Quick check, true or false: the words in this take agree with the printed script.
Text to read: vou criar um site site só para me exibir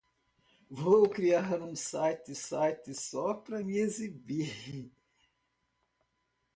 true